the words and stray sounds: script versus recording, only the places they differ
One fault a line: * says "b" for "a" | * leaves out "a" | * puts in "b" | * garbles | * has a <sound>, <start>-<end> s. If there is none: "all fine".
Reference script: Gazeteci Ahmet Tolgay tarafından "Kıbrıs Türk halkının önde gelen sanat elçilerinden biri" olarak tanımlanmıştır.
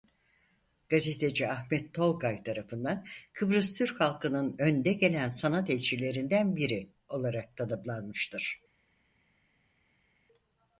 all fine